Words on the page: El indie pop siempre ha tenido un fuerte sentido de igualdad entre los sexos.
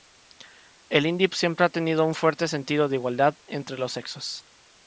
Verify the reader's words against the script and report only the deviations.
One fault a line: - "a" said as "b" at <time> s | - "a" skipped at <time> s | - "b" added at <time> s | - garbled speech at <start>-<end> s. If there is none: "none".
- "pop" skipped at 1.3 s